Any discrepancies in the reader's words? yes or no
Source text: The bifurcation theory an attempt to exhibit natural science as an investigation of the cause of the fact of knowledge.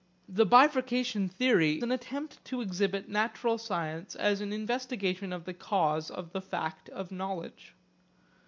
no